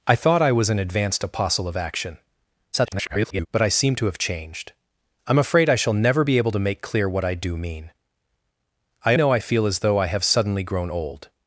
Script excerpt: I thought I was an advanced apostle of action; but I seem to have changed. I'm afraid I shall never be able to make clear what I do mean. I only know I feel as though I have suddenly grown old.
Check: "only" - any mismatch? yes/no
yes